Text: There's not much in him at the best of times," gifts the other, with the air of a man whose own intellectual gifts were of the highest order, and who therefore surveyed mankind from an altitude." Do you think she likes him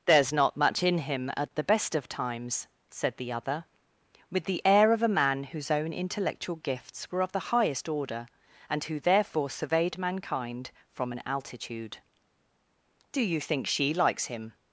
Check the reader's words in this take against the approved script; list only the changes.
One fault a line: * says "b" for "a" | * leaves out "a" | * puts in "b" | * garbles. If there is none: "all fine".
* says "said" for "gifts"